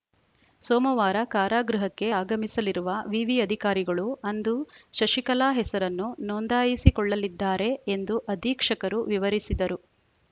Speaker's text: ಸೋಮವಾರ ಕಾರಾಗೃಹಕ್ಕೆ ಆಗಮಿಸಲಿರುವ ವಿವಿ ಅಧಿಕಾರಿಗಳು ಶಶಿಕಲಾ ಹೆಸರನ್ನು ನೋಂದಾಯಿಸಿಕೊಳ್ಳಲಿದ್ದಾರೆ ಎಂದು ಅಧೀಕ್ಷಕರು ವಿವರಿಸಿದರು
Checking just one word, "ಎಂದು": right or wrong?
right